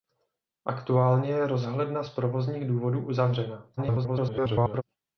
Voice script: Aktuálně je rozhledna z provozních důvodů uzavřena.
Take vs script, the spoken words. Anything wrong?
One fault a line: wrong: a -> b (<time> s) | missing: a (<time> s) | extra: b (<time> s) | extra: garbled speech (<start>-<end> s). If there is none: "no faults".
extra: garbled speech (3.8-4.8 s)